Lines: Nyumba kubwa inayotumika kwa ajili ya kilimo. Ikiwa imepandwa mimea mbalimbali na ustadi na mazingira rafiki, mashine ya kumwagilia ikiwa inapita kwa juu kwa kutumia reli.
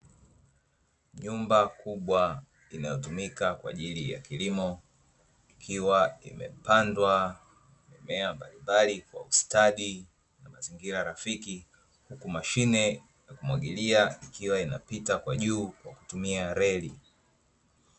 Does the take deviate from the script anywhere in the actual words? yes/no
yes